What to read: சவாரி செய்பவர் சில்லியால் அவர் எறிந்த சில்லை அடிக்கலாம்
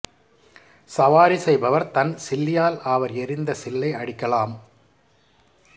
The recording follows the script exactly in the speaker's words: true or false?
false